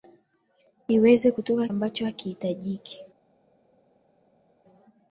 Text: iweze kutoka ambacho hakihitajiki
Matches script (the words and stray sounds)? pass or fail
pass